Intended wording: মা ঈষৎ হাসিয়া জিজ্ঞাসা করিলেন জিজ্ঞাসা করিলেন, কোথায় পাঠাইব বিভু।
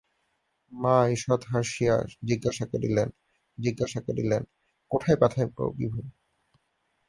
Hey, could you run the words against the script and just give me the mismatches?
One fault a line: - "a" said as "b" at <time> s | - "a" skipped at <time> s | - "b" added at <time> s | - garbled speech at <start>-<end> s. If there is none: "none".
none